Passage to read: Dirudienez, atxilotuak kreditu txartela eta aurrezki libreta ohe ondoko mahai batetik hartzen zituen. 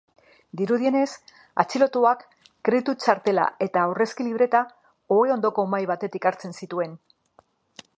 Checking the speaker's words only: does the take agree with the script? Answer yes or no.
yes